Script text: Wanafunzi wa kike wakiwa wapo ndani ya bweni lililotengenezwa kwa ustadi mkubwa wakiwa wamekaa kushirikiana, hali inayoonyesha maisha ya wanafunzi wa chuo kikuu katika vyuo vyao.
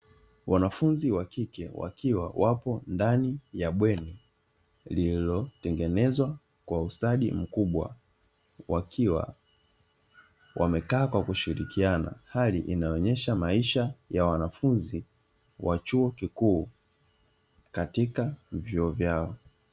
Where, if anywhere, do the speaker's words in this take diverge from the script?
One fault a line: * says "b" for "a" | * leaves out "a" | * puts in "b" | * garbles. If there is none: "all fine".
* puts in "kwa"